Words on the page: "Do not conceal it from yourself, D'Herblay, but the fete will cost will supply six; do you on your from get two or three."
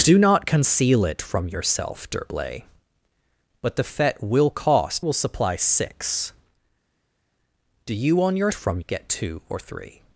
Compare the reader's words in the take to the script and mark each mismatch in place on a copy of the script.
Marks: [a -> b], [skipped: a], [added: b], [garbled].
"Do not conceal it from yourself, D'Herblay, but the fete will cost will supply six; do you on your from get two or three."